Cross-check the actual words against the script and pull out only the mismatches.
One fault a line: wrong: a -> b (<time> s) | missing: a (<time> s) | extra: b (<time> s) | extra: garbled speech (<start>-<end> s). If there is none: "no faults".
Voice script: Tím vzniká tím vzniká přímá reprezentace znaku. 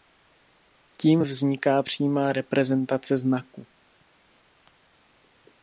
missing: tím vzniká (1.8 s)